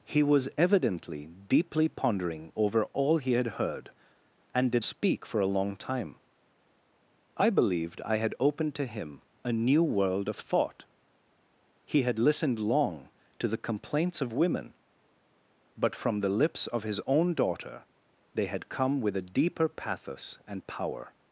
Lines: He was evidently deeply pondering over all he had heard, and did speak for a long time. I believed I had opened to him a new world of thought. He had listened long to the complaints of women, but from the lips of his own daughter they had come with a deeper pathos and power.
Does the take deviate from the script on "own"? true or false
false